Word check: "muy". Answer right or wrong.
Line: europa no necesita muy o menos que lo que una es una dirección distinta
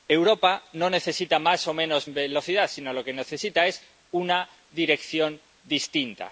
wrong